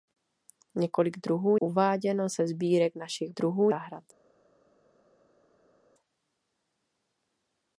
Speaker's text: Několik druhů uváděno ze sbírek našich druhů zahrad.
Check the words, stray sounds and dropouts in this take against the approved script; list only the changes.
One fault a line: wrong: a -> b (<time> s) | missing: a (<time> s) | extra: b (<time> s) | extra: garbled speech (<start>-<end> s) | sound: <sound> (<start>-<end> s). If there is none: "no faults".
no faults